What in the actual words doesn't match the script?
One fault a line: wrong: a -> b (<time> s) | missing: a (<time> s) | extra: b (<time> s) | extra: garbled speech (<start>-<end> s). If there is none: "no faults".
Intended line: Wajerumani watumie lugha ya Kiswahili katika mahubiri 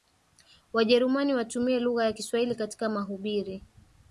no faults